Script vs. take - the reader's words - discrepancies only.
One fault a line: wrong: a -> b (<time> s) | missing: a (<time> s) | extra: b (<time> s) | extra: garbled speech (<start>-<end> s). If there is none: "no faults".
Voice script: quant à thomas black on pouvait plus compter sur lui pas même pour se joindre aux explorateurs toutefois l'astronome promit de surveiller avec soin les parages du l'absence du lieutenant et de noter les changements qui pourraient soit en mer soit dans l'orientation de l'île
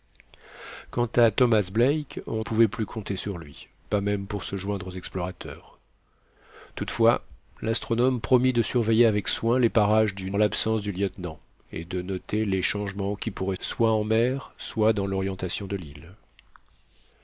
no faults